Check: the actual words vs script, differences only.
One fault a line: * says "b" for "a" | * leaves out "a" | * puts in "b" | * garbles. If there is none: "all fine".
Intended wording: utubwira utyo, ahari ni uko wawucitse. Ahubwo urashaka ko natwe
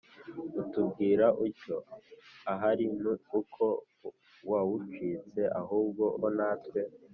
* leaves out "urashaka"